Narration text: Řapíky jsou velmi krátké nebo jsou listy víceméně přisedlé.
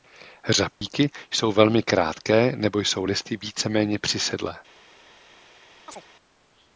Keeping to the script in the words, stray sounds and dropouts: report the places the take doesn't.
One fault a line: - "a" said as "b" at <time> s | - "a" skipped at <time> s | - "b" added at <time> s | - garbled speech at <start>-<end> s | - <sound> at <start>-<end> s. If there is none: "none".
- dropout at 0.7-0.8 s
- chirp at 5.9-6.0 s